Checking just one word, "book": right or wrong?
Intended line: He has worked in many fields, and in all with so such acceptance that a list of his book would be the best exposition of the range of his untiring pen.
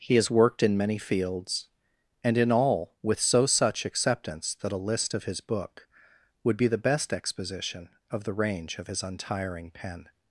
right